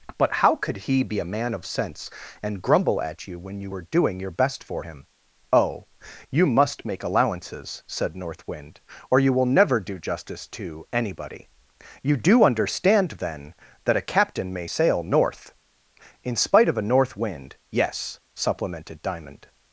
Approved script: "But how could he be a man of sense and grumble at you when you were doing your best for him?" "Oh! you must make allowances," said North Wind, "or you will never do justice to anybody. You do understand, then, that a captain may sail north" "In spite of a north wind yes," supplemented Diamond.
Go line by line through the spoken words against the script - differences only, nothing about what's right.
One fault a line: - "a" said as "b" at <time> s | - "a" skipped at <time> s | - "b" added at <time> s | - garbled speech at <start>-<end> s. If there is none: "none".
none